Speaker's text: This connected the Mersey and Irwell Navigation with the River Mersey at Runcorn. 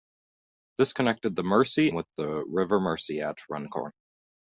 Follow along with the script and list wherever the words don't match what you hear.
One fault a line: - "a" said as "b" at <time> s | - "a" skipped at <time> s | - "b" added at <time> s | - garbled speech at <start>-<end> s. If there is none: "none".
- "and Irwell Navigation" skipped at 1.9 s